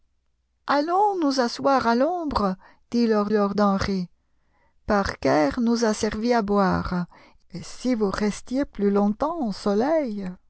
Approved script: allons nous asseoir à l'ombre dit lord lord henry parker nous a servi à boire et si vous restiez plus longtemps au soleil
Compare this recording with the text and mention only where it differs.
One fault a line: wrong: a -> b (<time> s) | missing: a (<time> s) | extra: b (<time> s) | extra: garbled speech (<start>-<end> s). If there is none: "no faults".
no faults